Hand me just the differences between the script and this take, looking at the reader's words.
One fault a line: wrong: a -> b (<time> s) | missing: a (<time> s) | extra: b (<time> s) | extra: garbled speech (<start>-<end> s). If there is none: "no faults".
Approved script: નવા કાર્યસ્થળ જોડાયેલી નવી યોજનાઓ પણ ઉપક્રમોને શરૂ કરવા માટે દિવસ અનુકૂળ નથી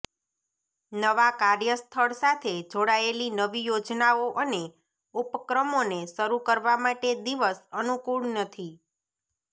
extra: સાથે (2.2 s)
wrong: પણ -> અને (4.4 s)